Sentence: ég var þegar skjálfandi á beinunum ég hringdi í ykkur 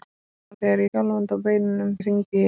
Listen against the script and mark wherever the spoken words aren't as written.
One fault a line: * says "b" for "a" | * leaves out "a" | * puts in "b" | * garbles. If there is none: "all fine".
all fine